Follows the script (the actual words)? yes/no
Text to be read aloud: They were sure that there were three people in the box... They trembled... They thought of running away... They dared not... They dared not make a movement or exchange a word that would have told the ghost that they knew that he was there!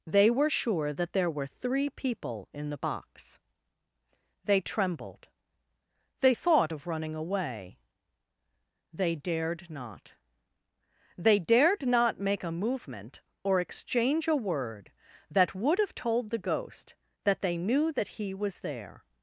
yes